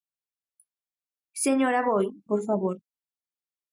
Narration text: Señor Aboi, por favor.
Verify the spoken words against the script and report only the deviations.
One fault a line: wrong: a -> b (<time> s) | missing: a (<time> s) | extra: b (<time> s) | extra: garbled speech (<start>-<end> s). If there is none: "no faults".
no faults